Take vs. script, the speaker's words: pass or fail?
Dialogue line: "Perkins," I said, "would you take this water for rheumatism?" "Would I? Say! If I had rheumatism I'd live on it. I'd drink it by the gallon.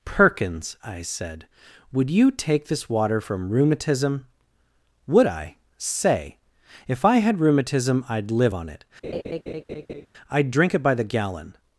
fail